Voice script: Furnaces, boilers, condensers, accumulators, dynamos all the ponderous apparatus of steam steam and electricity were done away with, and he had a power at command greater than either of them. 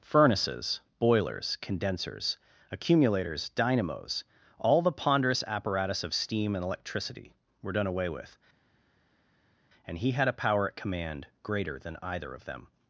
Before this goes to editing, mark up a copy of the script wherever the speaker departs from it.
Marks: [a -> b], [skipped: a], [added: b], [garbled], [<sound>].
Furnaces, boilers, condensers, accumulators, dynamos all the ponderous apparatus of steam [skipped: steam] and electricity were done away with, and he had a power at command greater than either of them.